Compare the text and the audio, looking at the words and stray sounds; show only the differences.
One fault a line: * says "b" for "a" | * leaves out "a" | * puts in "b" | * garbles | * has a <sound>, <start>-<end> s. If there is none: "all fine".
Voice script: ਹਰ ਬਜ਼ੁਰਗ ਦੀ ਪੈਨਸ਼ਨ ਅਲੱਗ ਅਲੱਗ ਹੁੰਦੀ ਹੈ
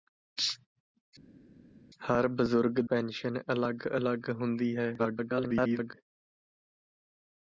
* leaves out "ਦੀ"
* garbles